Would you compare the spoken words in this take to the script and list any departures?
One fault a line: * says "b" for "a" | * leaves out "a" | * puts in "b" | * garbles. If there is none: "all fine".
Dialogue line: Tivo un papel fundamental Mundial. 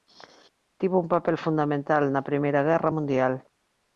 * puts in "na Primeira Guerra"